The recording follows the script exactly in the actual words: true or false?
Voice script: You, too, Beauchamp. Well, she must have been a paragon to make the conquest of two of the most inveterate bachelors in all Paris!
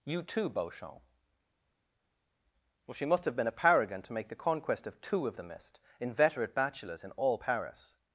false